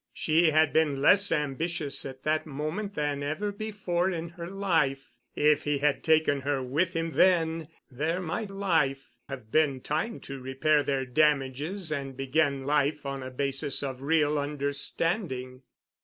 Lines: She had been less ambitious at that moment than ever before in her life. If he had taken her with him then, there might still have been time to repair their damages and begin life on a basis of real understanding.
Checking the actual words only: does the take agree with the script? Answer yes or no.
no